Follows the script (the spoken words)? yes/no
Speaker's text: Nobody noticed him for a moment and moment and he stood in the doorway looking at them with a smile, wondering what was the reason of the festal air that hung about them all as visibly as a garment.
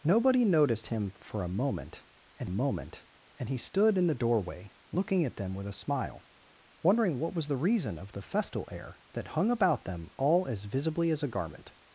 yes